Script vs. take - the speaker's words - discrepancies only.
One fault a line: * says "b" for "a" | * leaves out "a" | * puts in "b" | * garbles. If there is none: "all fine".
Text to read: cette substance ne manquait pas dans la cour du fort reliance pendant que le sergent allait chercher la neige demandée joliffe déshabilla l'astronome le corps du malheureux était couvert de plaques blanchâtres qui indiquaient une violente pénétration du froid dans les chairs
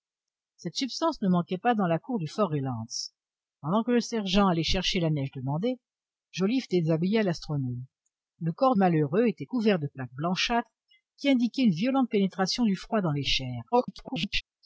* leaves out "du"
* garbles